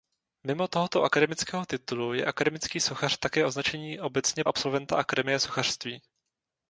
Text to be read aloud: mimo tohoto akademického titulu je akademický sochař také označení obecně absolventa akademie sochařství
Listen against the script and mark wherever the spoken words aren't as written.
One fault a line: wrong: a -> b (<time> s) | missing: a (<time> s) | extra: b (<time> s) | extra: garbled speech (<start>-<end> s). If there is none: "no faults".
no faults